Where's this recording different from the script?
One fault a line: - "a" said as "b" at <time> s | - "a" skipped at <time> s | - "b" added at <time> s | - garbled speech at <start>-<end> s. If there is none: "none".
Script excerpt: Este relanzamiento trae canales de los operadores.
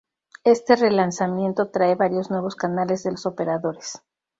- "varios nuevos" added at 1.9 s